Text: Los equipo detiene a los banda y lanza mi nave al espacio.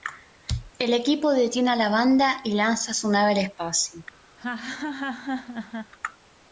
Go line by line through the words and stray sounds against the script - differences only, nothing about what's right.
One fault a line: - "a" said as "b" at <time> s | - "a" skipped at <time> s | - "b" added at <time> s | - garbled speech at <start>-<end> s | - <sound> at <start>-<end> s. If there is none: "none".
- "Los" said as "El" at 0.8 s
- "los" said as "la" at 1.8 s
- "mi" said as "su" at 2.9 s
- laugh at 4.4-5.9 s